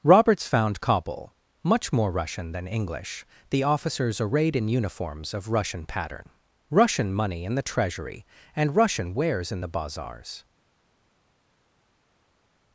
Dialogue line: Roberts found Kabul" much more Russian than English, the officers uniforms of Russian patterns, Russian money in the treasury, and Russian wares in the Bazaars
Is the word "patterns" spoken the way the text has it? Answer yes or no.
no